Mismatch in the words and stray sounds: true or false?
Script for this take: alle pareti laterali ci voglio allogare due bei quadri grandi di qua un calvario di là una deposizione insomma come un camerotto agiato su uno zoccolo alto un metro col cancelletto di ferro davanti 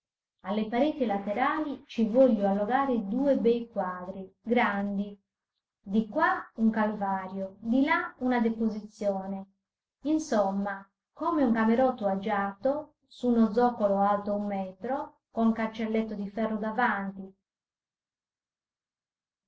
false